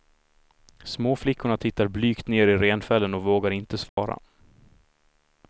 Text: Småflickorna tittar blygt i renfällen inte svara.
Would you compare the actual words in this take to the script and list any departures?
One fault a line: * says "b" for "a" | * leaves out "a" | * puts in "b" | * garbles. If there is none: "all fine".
* puts in "ner"
* puts in "och vågar"